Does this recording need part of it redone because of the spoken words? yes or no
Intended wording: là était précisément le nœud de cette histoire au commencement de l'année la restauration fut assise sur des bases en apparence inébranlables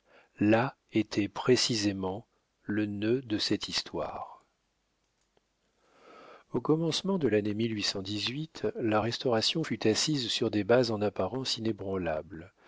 no